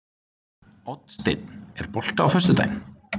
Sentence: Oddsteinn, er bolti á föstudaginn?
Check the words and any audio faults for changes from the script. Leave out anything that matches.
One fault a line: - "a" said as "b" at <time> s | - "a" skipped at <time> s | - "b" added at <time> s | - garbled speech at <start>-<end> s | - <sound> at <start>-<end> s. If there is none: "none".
none